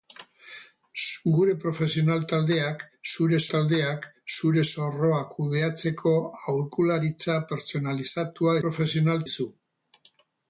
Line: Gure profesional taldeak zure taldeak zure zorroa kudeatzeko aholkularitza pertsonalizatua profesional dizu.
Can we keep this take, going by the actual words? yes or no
yes